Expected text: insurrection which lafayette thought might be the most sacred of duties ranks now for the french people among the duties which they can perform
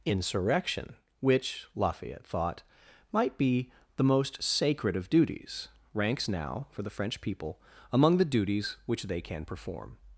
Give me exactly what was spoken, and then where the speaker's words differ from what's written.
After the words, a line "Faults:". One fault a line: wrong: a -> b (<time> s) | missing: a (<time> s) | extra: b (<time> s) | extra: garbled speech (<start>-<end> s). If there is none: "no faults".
insurrection which lafayette thought might be the most sacred of duties ranks now for the french people among the duties which they can perform
Faults:
no faults